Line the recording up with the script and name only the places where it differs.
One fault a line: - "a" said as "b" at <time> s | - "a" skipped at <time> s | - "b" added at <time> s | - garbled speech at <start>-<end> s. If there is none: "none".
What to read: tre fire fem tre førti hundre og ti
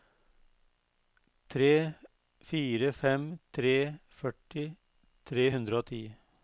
- "tre" added at 5.3 s